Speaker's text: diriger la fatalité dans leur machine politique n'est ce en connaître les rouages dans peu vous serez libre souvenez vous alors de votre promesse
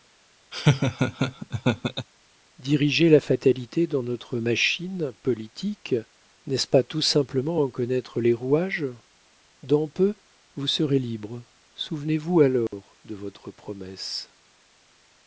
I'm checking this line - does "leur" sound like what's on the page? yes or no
no